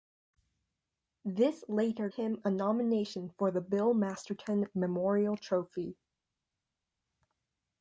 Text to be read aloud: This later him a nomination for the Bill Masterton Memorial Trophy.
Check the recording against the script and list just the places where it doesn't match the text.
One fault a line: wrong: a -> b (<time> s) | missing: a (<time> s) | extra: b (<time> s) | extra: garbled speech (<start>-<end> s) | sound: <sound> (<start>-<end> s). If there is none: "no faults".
no faults